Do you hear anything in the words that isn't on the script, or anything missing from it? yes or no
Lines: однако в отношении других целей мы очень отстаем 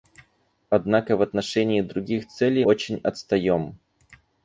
yes